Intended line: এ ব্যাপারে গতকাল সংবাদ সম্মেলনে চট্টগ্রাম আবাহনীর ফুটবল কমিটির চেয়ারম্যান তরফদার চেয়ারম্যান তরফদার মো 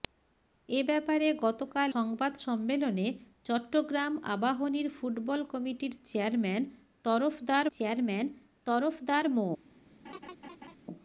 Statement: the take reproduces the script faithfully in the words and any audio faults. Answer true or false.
false